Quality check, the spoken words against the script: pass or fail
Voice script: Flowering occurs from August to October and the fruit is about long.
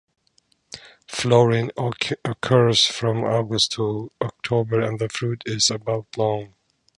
pass